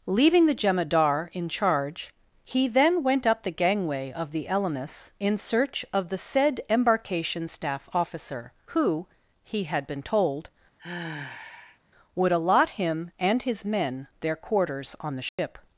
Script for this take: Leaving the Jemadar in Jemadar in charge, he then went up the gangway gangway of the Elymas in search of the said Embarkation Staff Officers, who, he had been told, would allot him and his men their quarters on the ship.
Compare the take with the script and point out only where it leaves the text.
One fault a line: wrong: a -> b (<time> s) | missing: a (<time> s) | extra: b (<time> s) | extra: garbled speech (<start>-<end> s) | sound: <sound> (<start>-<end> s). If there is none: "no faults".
missing: Jemadar in (1.5 s)
missing: gangway (4.1 s)
wrong: Officers -> Officer (7.9 s)
sound: sigh (10.8-11.8 s)
sound: dropout (15.3-15.4 s)